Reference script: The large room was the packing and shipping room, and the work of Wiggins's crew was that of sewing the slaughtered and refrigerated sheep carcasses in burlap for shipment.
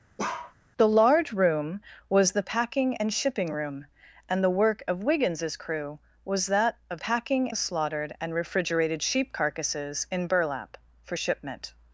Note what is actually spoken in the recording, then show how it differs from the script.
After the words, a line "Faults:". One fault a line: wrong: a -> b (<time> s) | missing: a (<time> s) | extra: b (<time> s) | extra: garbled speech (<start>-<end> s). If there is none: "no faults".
The large room was the packing and shipping room, and the work of Wiggins's crew was that of packing the slaughtered and refrigerated sheep carcasses in burlap for shipment.
Faults:
wrong: sewing -> packing (7.0 s)